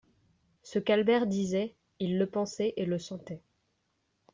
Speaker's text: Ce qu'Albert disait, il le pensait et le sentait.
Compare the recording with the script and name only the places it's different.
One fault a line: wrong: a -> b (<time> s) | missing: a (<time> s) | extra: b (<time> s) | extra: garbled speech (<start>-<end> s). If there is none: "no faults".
no faults